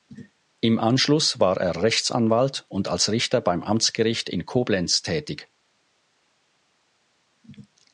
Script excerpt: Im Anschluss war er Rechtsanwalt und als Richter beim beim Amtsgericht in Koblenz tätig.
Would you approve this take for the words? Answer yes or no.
no